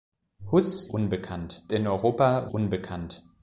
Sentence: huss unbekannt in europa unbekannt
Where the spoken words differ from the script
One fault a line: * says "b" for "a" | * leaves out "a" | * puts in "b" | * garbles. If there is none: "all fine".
all fine